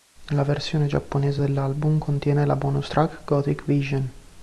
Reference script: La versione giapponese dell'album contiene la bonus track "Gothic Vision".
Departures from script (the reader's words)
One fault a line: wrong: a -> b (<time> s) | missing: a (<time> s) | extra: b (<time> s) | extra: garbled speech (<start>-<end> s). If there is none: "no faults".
no faults